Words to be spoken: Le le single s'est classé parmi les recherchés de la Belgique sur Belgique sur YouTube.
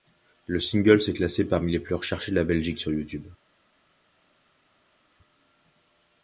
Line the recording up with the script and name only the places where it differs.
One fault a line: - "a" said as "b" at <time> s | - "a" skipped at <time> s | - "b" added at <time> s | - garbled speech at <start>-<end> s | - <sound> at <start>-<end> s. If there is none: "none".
- "le" skipped at 0.6 s
- "plus" added at 1.8 s
- "Belgique sur" skipped at 2.9 s